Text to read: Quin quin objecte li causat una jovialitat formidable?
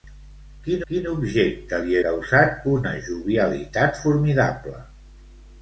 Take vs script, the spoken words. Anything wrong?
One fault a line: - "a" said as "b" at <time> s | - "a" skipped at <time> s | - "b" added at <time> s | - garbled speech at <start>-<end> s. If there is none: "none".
none